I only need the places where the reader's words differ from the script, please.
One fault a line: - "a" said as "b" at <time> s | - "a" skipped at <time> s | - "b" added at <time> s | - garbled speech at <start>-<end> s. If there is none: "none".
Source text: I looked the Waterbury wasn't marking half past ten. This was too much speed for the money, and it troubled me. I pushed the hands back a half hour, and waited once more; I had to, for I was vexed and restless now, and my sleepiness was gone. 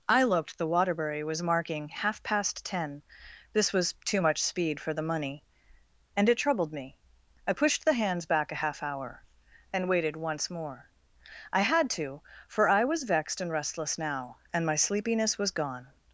- "wasn't" said as "was" at 1.2 s